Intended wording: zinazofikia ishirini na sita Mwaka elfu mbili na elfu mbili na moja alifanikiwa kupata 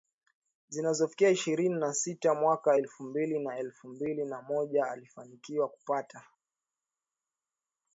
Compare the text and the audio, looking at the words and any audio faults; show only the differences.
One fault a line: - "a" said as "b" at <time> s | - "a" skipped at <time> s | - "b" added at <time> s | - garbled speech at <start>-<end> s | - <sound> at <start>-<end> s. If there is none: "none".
none